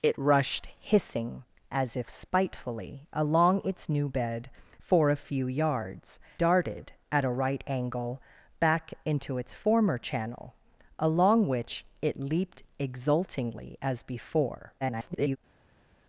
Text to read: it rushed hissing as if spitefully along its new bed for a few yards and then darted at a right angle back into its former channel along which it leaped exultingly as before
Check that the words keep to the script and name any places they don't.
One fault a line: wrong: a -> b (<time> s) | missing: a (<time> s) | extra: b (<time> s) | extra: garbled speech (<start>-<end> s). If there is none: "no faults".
missing: and then (6.2 s)
extra: garbled speech (14.8-15.4 s)